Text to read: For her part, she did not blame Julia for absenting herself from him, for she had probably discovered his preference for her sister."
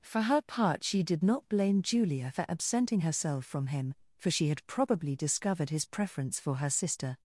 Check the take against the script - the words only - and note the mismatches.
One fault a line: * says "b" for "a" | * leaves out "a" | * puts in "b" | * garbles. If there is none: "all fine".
all fine